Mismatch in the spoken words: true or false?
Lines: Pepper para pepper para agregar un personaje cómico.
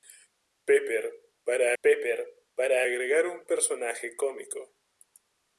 false